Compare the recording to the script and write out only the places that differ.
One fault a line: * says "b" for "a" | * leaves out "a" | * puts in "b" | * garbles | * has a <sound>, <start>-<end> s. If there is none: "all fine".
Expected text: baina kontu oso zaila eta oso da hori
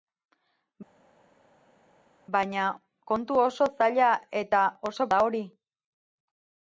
all fine